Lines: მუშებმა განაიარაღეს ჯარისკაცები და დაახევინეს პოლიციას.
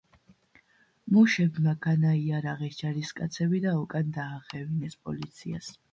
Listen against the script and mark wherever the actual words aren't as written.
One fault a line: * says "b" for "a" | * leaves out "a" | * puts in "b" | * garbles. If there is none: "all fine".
* puts in "უკან"